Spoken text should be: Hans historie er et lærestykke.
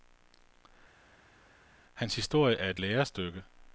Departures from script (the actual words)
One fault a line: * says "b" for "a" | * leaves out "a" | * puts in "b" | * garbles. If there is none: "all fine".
all fine